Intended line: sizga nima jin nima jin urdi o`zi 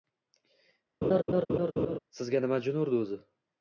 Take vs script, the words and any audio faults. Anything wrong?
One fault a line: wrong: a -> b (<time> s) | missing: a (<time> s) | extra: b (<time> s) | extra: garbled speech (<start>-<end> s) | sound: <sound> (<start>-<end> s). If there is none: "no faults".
sound: laugh (1.0-2.0 s)
missing: nima jin (2.8 s)